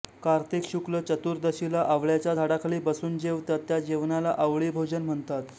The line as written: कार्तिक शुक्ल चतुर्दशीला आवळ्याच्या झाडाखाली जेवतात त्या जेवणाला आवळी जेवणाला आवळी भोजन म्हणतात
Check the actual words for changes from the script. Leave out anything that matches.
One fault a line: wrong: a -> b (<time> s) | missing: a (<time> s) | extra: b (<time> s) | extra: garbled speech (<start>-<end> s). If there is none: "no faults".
extra: बसून (2.8 s)
missing: जेवणाला आवळी (4.7 s)